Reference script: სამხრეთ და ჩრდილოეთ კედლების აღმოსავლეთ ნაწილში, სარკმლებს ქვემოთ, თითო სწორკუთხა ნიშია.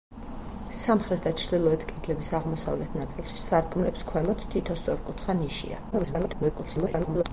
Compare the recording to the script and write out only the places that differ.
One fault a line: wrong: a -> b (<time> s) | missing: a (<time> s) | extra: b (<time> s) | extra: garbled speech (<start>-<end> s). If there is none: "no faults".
extra: garbled speech (5.9-7.2 s)